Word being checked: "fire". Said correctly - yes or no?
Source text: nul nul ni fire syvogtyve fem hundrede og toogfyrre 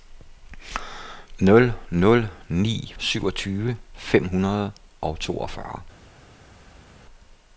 no